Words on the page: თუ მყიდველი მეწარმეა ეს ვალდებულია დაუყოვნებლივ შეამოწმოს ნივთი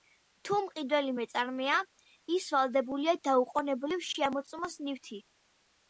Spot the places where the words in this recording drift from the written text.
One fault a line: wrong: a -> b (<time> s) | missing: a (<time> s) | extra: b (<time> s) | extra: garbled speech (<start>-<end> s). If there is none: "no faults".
wrong: ეს -> ის (2.4 s)